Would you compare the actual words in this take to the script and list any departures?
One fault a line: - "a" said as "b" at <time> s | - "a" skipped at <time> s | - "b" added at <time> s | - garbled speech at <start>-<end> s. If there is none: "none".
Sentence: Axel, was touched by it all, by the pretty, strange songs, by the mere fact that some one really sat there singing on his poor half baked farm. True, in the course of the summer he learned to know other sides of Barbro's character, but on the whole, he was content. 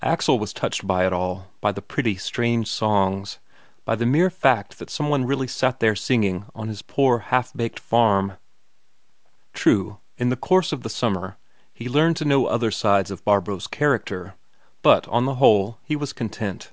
none